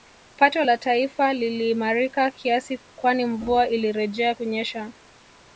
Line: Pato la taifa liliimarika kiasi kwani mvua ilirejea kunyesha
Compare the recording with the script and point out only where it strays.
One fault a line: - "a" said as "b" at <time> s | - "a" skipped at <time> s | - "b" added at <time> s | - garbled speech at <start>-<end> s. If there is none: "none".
none